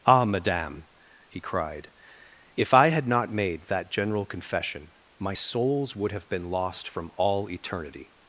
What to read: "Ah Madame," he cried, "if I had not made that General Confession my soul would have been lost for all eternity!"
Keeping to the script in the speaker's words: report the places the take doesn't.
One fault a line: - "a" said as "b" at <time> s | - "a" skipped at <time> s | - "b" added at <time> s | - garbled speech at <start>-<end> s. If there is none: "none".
- "soul" said as "souls" at 5.3 s
- "for" said as "from" at 6.9 s